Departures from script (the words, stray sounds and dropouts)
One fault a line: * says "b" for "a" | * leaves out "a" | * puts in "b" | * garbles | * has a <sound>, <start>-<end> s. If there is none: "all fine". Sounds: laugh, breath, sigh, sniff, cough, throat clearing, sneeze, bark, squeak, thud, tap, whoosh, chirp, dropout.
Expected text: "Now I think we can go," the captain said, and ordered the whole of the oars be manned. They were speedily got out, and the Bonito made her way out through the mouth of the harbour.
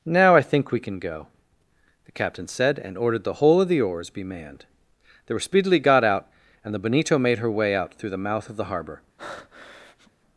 * has a breath, 9.2-10.1 s